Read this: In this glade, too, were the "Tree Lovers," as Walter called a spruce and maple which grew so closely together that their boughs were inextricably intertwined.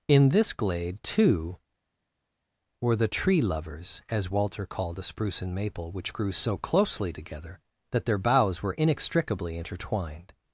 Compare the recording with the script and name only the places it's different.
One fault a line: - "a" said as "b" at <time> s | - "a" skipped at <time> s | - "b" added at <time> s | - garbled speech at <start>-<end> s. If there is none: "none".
none